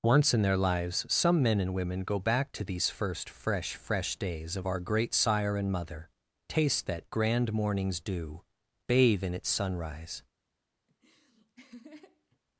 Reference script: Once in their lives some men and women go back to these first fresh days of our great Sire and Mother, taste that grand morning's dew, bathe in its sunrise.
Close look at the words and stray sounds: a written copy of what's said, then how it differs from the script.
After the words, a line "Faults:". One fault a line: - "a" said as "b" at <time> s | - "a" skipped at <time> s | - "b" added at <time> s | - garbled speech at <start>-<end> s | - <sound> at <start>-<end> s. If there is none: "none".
Once in their lives some men and women go back to these first fresh fresh days of our great Sire and Mother, taste that grand morning's dew, bathe in its sunrise.
Faults:
- "fresh" added at 3.8 s
- laugh at 10.9-12.4 s